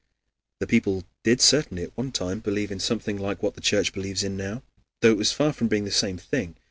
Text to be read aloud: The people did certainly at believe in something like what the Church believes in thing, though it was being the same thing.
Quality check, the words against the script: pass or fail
fail